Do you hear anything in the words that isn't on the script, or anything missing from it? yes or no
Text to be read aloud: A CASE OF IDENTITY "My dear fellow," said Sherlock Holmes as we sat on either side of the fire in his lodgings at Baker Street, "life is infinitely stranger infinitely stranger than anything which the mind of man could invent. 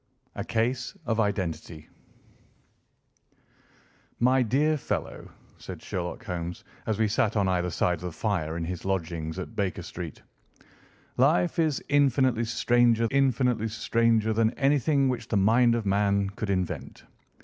no